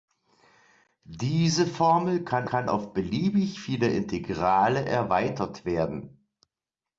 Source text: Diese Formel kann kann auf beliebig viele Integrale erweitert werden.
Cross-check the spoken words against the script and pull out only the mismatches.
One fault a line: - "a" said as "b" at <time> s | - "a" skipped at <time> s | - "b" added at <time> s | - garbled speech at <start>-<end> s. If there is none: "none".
none